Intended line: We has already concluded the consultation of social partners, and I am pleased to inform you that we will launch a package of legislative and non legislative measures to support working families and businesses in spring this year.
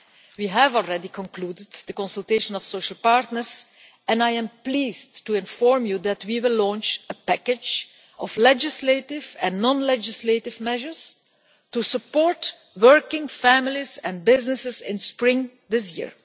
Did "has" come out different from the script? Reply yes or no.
yes